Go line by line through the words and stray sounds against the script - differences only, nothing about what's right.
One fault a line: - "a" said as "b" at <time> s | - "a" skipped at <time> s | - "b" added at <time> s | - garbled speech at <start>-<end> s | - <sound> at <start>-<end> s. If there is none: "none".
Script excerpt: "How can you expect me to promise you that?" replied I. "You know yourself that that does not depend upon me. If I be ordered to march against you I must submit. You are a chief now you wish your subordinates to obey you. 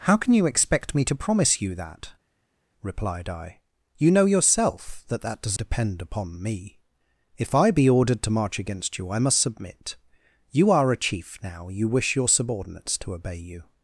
- "not" skipped at 5.6 s